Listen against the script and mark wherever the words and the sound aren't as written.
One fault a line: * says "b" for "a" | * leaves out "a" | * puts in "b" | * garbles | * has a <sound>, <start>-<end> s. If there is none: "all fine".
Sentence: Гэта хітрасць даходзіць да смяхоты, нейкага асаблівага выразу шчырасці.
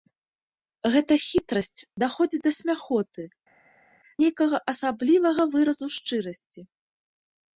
all fine